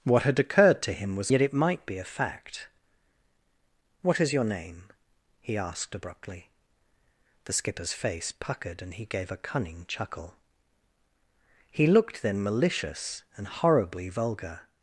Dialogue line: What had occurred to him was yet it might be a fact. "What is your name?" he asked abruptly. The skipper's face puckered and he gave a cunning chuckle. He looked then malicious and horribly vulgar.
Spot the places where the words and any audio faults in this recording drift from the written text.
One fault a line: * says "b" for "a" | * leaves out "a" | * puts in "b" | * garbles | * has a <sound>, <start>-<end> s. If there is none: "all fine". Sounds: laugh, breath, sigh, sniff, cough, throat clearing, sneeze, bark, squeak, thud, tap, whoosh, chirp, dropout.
all fine